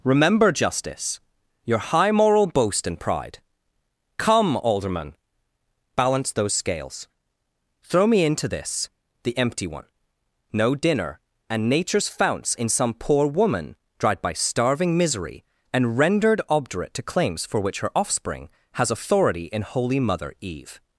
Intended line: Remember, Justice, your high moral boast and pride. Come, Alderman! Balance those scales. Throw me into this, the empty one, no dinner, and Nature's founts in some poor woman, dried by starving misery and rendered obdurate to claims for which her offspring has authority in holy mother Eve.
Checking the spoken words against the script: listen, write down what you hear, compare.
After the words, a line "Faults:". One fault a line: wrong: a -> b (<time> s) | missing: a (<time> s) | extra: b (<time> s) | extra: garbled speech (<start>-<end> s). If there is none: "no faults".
Remember, Justice, your high moral boast and pride. Come, Alderman! Balance those scales. Throw me into this, the empty one, no dinner, and Nature's founts in some poor woman, dried by starving misery and rendered obdurate to claims for which her offspring has authority in holy mother Eve.
Faults:
no faults